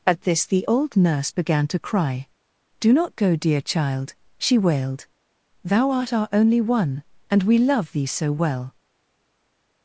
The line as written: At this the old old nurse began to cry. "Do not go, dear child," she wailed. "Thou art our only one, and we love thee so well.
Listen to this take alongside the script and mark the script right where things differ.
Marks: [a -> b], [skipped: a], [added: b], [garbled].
At this the old [skipped: old] nurse began to cry. "Do not go, dear child," she wailed. "Thou art our only one, and we love thee so well.